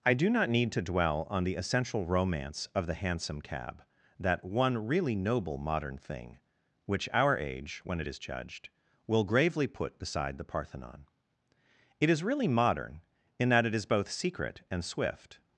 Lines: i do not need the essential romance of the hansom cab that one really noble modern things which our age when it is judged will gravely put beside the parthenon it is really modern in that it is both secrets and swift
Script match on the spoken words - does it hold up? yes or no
no